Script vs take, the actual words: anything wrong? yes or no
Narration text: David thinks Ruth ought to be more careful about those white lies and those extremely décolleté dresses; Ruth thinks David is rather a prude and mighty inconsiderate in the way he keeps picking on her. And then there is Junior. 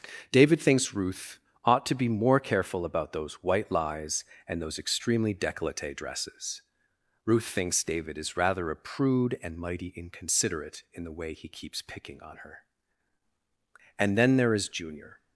no